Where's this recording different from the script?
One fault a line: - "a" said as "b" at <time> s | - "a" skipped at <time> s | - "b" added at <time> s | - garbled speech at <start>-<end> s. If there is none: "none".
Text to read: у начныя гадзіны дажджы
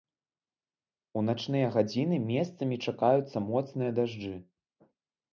- "месцамі чакаюцца моцныя" added at 2.3 s